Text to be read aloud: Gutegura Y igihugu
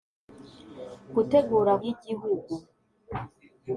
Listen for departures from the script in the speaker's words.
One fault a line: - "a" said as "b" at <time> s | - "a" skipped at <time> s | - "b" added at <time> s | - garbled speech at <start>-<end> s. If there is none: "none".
none